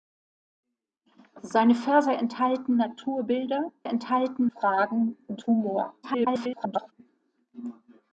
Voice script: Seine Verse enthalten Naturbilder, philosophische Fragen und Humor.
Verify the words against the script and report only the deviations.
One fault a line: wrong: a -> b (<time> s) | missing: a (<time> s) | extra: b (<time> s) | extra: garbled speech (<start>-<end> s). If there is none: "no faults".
wrong: philosophische -> enthalten (3.8 s)
extra: garbled speech (6.0-6.9 s)